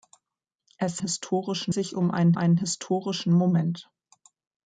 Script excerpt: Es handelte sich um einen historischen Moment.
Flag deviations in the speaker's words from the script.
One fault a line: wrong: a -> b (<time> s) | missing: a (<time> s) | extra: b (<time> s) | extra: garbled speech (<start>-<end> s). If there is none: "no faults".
wrong: handelte -> historischen (1.0 s)
extra: einen (2.3 s)